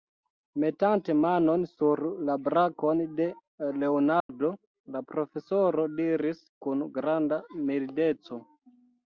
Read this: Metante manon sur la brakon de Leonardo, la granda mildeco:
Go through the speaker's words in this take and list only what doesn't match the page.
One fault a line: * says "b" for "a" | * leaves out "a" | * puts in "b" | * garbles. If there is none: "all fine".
* puts in "profesoro diris kun"